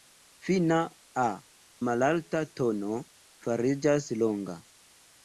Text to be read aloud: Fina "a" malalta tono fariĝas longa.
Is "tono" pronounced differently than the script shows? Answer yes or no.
no